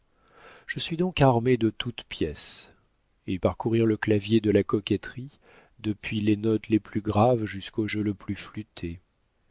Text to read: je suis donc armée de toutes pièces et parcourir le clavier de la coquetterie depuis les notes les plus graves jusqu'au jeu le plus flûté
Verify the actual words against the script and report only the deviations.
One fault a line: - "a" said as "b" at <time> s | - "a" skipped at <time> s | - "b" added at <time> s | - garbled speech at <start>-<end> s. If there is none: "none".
none